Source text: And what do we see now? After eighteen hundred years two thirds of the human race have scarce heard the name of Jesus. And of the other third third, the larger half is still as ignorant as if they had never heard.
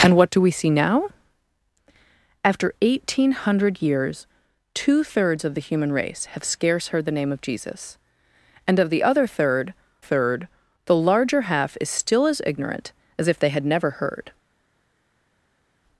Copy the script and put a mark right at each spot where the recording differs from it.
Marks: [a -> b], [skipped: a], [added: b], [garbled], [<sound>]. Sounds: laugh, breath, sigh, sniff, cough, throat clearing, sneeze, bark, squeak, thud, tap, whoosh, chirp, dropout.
And what do we see now? After eighteen hundred years two thirds of the human race have scarce heard the name of Jesus. And of the other third third, the larger half is still as ignorant as if they had never heard.